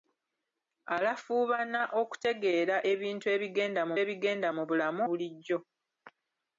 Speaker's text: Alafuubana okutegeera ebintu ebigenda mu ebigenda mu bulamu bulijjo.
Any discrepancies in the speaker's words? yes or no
no